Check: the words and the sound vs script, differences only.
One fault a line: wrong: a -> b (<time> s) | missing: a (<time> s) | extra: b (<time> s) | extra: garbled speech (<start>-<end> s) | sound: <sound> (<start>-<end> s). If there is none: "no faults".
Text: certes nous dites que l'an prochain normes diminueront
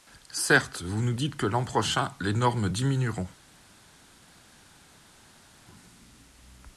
extra: vous (0.8 s)
extra: les (2.2 s)